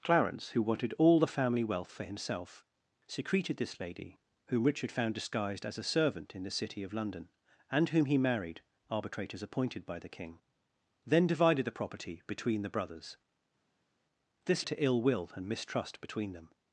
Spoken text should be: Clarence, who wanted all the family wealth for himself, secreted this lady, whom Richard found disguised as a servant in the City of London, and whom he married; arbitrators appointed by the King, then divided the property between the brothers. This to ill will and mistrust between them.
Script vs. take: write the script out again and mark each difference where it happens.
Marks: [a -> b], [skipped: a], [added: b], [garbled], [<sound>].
Clarence, who wanted all the family wealth for himself, secreted this lady, whom Richard found disguised as a servant in the City of London, and whom he married; arbitrators appointed by the King, then divided the property between the brothers. This to ill will and mistrust between them.